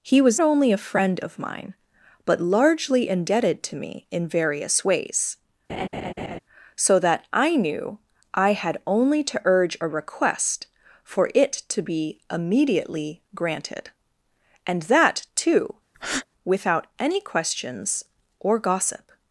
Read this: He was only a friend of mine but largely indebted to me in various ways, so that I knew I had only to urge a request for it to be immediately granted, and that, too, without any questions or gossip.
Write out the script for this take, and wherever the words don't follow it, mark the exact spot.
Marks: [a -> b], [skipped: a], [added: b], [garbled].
He was only a friend of mine but largely indebted to me in various ways, so that I knew I had only to urge a request for it to be immediately granted, and that, too, without any questions or gossip.